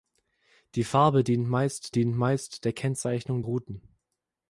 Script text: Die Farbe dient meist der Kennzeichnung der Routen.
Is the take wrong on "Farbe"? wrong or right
right